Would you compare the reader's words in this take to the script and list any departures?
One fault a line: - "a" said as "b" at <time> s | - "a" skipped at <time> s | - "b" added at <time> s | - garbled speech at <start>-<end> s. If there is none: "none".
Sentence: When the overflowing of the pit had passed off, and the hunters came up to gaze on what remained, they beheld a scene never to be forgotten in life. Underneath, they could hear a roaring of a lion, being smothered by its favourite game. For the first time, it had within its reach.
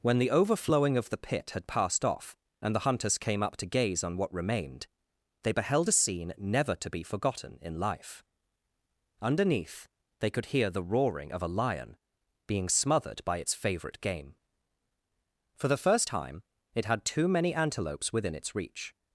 - "a" said as "the" at 10.7 s
- "too many antelopes" added at 17.1 s